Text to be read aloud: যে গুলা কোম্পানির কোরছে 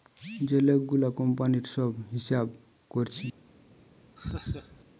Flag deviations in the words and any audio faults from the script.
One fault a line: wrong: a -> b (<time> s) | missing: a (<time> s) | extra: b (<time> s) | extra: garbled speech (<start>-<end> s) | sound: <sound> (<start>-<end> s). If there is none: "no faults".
extra: লোক (0.7 s)
extra: সব হিসাব (1.7 s)
sound: laugh (4.2-4.8 s)